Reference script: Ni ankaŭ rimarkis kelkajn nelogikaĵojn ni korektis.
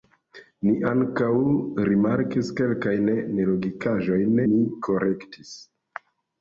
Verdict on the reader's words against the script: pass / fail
pass